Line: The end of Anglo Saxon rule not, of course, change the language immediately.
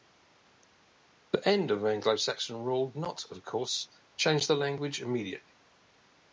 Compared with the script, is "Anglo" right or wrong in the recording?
right